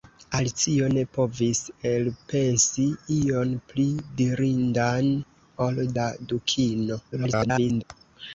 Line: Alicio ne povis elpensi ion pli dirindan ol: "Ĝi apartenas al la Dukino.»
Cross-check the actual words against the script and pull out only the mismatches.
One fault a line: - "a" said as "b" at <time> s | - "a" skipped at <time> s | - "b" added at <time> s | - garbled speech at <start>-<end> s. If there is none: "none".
- "Ĝi apartenas al" skipped at 5.8 s
- garbled speech at 7.1-7.8 s